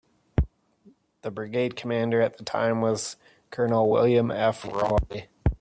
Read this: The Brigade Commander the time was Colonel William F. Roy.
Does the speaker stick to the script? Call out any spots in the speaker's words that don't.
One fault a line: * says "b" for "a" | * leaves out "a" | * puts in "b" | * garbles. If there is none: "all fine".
* puts in "at"